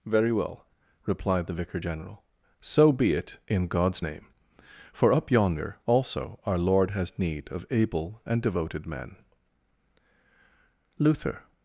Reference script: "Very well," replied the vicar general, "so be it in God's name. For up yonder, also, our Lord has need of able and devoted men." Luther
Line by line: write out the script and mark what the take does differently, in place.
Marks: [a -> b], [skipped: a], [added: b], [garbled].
"Very well," replied the vicar general, "so be it in God's name. For up yonder, also, our Lord has need of able and devoted men." Luther